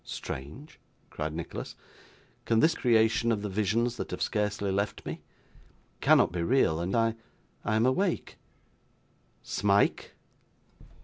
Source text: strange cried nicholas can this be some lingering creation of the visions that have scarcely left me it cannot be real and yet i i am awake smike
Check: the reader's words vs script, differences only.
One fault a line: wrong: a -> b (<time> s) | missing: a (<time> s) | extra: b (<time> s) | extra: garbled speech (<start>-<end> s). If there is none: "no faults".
missing: be some lingering (2.7 s)
missing: it (5.2 s)
missing: yet (6.9 s)